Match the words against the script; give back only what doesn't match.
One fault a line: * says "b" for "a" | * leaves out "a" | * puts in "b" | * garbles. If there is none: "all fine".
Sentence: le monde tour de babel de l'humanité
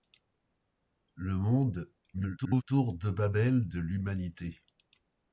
* garbles